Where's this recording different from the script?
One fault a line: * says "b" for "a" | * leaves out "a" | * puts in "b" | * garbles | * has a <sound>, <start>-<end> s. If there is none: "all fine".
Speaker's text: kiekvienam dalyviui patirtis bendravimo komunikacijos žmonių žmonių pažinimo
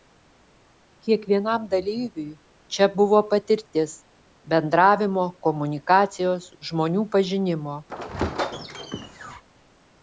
* puts in "čia buvo"
* leaves out "žmonių"
* has a squeak, 7.9-9.4 s